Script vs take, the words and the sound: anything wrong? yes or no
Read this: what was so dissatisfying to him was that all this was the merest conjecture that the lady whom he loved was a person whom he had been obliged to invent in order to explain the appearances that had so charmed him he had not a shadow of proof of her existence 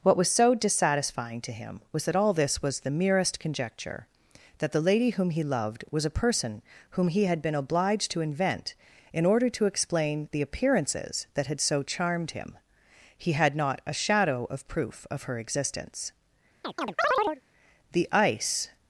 yes